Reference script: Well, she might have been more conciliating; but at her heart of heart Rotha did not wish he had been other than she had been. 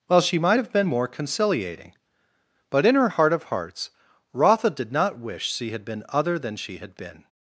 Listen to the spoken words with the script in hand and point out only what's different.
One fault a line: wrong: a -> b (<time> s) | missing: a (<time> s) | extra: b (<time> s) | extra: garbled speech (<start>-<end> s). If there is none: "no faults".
wrong: at -> in (2.8 s)
wrong: heart -> hearts (3.4 s)
wrong: he -> she (5.5 s)